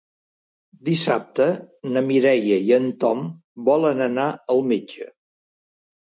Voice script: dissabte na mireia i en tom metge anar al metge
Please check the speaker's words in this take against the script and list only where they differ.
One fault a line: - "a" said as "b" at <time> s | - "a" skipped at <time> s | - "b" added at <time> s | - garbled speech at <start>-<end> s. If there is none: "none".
- "metge" said as "volen" at 3.7 s